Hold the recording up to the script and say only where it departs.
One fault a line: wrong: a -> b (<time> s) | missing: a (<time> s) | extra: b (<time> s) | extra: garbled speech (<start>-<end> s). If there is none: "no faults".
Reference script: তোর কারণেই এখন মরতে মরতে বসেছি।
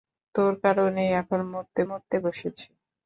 no faults